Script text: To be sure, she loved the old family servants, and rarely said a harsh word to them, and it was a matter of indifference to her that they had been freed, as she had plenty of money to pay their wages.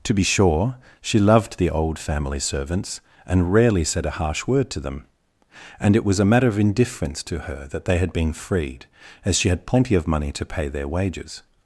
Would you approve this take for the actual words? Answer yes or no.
yes